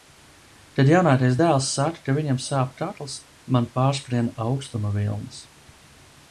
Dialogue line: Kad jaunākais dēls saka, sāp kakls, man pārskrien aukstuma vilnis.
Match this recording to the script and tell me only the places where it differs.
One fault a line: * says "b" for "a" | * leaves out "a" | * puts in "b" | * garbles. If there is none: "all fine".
* puts in "ka viņam"